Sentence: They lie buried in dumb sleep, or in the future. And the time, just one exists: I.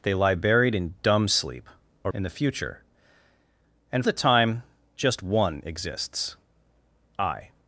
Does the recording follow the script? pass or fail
pass